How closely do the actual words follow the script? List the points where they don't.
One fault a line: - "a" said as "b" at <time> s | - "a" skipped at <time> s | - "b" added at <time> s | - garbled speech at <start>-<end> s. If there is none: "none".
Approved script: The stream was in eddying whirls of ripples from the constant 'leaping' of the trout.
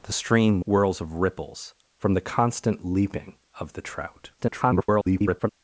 - "was in eddying" skipped at 0.6 s
- garbled speech at 4.4-5.5 s